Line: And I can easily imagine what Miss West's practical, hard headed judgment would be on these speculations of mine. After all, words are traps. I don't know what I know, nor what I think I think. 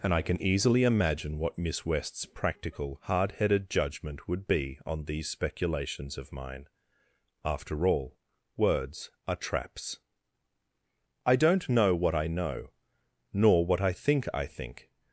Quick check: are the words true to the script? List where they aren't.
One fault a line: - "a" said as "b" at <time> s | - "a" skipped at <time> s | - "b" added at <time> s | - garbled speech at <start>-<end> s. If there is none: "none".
none